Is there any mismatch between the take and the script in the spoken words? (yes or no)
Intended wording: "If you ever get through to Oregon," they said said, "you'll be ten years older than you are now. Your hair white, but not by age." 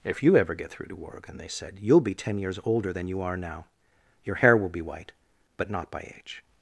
yes